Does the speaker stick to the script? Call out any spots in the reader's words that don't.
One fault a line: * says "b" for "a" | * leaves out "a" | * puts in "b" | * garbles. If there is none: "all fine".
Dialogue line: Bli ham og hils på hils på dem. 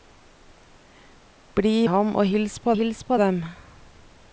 all fine